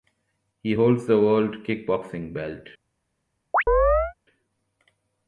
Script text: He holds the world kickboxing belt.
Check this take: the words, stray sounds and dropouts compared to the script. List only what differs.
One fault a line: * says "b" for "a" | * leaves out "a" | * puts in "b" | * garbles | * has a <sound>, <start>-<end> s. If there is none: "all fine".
* has a chirp, 3.5-4.1 s